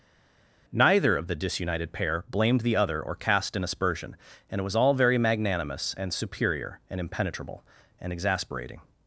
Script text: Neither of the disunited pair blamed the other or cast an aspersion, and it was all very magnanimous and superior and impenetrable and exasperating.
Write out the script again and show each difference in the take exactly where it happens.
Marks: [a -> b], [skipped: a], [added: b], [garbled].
Neither of the disunited pair blamed the other or cast an aspersion, and it was all very magnanimous and superior and impenetrable and exasperating.